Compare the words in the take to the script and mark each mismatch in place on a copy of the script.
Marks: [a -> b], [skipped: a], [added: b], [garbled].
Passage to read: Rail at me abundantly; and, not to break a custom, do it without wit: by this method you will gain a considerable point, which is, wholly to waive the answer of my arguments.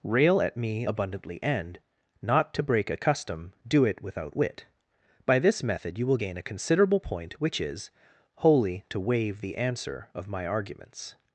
Rail at me abundantly; and, not to break a custom, do it without wit: by this method you will gain a considerable point, which is, wholly to waive the answer of my arguments.